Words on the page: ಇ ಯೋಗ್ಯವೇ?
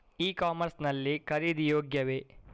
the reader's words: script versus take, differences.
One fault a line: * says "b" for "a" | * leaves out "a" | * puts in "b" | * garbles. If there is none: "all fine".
* puts in "ಕಾಮರ್ಸ್ ಲ್ಲಿ ಖರೀದಿ"